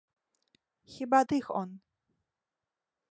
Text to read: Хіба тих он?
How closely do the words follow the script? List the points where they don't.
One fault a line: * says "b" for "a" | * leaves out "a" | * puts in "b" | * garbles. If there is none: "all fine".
all fine